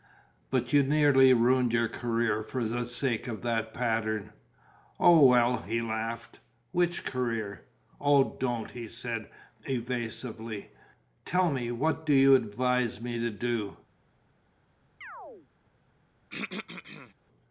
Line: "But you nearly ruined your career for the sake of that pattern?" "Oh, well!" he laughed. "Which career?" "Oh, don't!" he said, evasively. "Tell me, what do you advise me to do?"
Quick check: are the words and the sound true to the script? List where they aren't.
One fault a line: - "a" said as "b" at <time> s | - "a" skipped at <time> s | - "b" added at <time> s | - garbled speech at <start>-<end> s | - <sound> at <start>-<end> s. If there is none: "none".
- chirp at 15.0-15.5 s
- throat clearing at 16.3-17.1 s